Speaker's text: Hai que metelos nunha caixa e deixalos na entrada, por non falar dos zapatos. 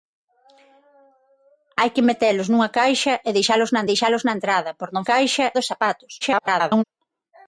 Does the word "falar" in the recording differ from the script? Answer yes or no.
yes